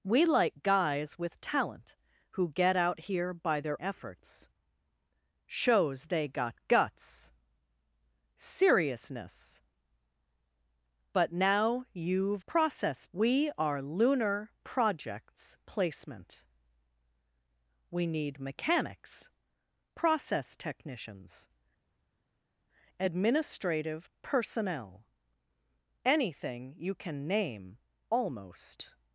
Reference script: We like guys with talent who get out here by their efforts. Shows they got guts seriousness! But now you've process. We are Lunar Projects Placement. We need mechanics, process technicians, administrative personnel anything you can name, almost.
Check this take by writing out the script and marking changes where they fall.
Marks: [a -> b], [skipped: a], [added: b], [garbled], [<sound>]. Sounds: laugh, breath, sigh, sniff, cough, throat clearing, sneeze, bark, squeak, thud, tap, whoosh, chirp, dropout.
We like guys with talent who get out here by their efforts. Shows they got guts seriousness! But now you've process. We are Lunar Projects Placement. We need mechanics, process technicians, administrative personnel anything you can name, almost.